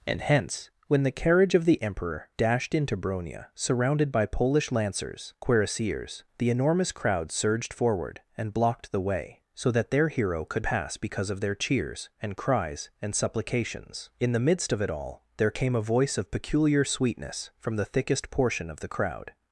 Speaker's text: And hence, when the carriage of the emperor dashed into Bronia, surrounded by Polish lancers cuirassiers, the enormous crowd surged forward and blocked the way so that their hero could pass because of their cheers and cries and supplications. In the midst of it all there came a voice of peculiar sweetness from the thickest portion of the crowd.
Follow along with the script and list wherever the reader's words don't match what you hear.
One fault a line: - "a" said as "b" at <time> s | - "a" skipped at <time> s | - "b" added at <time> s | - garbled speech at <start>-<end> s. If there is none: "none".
none